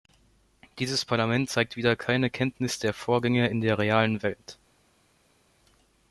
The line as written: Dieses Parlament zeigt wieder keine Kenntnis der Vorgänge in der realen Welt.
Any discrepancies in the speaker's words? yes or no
no